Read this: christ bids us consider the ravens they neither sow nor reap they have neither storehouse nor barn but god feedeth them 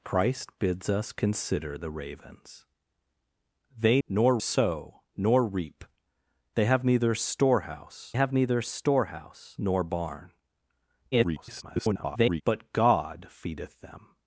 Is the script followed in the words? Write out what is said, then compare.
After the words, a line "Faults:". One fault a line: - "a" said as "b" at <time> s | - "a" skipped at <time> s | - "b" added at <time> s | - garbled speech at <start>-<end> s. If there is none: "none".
christ bids us consider the ravens they nor sow nor reap they have neither storehouse have neither storehouse nor barn [garbled] but god feedeth them
Faults:
- "neither" said as "nor" at 4.1 s
- "have neither storehouse" added at 8.1 s
- garbled speech at 11.1-12.4 s